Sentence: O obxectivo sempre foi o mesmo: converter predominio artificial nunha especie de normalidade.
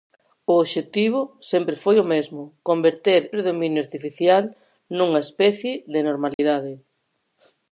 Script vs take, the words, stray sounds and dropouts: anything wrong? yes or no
yes